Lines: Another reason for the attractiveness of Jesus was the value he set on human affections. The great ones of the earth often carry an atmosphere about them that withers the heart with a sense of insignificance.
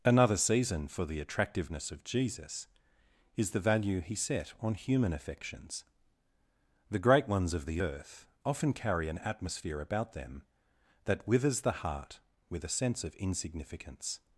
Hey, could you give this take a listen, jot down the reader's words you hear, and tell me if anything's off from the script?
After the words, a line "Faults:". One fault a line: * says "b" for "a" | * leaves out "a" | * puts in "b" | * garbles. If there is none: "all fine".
Another season for the attractiveness of Jesus is the value he set on human affections. The great ones of the earth often carry an atmosphere about them that withers the heart with a sense of insignificance.
Faults:
* says "season" for "reason"
* says "is" for "was"